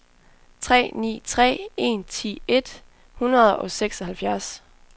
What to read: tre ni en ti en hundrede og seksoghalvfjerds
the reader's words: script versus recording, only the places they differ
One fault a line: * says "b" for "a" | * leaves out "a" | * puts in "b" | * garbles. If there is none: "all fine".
* puts in "tre"
* says "et" for "en"